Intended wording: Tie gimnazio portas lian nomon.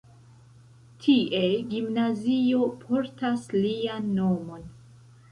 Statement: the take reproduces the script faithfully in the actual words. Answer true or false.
true